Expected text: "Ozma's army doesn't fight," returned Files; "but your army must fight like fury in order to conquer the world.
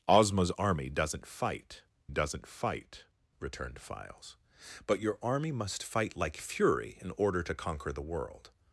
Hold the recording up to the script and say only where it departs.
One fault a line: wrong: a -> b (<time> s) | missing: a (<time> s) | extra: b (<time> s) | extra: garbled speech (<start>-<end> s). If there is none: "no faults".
extra: doesn't fight (2.1 s)